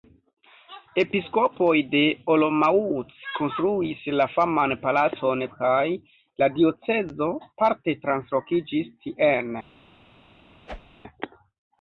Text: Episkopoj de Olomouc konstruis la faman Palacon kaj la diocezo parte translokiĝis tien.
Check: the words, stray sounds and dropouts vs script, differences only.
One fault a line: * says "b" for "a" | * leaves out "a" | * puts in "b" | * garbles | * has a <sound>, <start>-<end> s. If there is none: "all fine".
* has a whoosh, 10.7-11.0 s